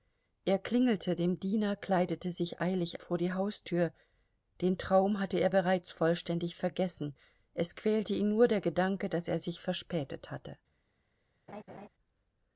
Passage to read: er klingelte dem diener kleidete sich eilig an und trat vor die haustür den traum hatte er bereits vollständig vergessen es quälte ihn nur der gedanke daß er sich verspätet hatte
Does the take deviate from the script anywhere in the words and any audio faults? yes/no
yes